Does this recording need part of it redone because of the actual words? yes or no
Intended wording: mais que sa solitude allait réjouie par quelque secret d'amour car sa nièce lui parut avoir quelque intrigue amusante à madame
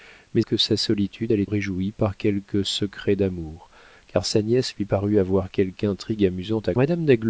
no